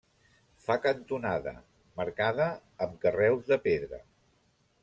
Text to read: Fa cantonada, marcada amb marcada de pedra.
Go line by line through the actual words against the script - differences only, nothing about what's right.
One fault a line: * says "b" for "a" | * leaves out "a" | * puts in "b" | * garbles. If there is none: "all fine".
* says "carreus" for "marcada"